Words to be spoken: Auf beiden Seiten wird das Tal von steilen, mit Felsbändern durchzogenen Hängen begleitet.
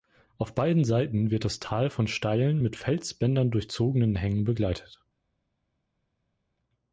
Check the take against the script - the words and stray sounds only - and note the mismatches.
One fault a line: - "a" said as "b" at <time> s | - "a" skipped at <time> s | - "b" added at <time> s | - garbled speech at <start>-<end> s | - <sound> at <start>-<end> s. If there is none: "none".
none